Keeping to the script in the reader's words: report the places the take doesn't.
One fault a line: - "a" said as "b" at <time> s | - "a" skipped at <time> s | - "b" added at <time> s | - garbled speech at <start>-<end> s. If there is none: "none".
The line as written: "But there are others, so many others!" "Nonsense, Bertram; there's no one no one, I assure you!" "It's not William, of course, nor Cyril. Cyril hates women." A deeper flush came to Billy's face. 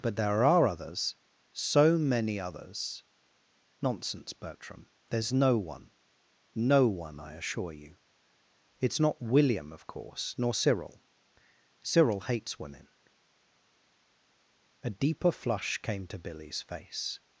none